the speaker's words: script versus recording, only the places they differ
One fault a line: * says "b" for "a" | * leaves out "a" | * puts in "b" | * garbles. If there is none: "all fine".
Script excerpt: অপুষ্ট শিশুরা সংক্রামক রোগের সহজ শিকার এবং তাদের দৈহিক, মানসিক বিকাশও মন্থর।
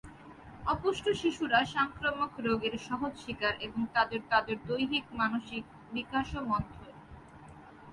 * puts in "তাদের"